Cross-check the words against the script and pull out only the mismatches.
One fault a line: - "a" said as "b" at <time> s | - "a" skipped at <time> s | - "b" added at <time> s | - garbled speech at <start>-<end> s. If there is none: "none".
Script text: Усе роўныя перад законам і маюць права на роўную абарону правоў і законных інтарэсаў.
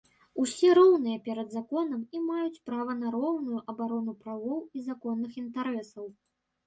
none